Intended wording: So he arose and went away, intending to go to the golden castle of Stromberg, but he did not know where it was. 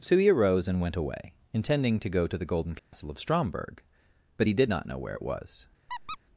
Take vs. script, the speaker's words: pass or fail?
pass